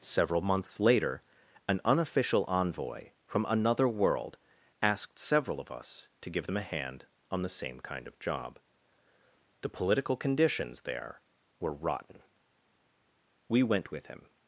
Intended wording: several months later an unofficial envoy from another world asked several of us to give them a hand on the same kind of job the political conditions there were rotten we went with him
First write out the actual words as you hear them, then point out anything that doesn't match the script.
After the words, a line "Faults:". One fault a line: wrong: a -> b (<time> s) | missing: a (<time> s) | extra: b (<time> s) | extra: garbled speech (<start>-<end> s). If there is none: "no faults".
several months later an unofficial envoy from another world asked several of us to give them a hand on the same kind of job the political conditions there were rotten we went with him
Faults:
no faults